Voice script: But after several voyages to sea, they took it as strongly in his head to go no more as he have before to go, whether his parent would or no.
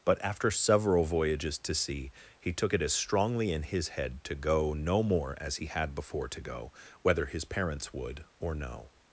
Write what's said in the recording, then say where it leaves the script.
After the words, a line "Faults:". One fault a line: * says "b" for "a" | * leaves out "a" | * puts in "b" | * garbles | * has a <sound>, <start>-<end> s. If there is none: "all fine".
But after several voyages to sea, he took it as strongly in his head to go no more as he had before to go, whether his parents would or no.
Faults:
* says "he" for "they"
* says "had" for "have"
* says "parents" for "parent"